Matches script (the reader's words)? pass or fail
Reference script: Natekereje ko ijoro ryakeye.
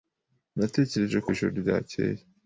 pass